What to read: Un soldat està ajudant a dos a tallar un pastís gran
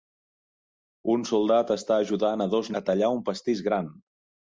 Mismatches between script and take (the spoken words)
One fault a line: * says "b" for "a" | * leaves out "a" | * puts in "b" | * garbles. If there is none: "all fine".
all fine